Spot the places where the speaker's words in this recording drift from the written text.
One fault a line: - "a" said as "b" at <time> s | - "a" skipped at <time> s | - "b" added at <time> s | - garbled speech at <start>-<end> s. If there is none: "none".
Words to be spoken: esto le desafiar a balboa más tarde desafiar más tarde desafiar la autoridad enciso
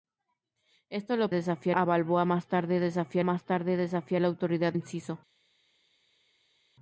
none